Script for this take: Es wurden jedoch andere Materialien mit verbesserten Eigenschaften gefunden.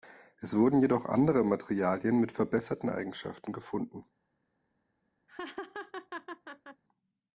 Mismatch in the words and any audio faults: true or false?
true